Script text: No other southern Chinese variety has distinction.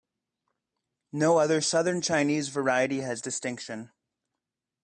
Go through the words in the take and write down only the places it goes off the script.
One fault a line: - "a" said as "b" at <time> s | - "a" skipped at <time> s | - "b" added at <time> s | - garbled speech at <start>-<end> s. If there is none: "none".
none